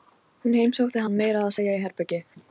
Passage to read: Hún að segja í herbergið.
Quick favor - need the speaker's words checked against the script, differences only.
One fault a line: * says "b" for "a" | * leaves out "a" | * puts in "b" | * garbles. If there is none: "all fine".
* puts in "heimsótti hann meira"